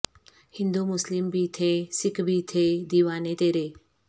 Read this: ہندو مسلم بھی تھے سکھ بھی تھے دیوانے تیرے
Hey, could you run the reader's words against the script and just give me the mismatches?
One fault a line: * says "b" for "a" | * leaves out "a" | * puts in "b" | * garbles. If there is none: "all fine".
all fine